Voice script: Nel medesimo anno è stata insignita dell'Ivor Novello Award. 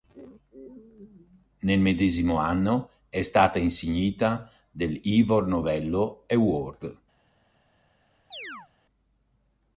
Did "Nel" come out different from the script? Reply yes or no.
no